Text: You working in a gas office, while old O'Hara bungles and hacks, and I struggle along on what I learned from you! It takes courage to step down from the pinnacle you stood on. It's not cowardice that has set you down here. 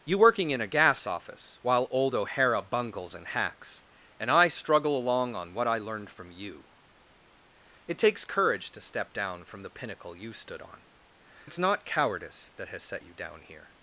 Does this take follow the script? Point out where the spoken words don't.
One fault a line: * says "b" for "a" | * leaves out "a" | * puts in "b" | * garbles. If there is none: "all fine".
all fine